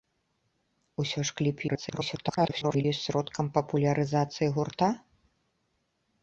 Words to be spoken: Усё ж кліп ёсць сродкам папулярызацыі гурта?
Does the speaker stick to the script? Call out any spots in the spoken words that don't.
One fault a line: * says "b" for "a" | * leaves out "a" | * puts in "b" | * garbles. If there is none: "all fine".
* garbles